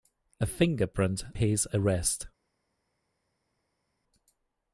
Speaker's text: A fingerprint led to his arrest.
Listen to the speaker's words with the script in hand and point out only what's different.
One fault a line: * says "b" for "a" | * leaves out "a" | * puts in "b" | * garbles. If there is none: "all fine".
* leaves out "led to"